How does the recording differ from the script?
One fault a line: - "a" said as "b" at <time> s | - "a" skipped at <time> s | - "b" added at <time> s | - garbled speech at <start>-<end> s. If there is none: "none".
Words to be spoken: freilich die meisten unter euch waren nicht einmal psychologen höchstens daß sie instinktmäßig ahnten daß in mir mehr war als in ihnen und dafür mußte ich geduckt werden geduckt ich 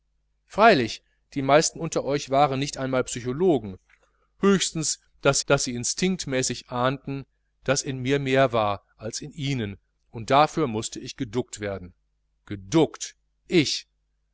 - "daß" added at 5.5 s